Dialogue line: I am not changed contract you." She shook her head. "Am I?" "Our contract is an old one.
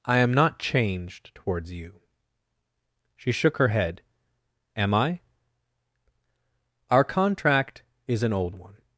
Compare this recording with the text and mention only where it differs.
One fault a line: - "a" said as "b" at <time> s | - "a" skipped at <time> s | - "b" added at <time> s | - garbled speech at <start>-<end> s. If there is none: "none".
- "contract" said as "towards" at 1.4 s